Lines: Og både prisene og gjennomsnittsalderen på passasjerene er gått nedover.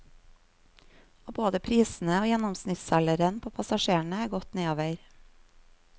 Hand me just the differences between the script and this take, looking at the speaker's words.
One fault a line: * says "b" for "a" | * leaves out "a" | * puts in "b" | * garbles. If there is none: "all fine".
all fine